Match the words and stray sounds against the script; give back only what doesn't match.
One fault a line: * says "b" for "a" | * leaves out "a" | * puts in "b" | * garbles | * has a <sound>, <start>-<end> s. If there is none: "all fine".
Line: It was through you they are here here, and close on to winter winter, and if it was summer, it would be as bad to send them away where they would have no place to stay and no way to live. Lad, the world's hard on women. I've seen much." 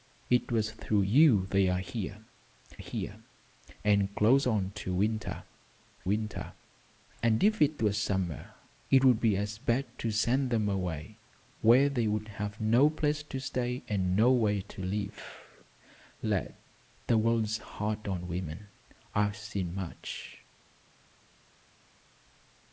all fine